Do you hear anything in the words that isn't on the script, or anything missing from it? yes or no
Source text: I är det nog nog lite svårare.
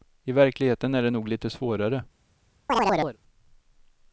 yes